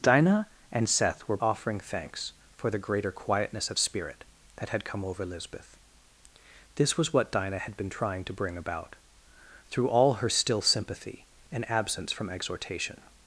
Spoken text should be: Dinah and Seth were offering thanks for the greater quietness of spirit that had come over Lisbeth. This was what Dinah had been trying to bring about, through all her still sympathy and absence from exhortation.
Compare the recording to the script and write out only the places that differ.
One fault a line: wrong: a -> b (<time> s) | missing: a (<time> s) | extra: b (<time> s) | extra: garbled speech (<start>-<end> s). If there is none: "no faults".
no faults